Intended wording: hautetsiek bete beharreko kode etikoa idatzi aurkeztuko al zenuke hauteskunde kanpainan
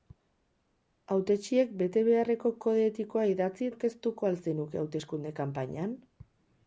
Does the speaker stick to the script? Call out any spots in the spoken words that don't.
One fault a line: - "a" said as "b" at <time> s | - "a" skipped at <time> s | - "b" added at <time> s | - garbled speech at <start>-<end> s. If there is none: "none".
none